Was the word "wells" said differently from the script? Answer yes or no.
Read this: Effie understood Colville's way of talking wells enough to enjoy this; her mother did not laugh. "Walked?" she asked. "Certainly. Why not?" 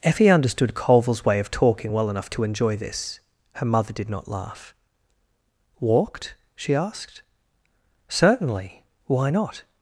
yes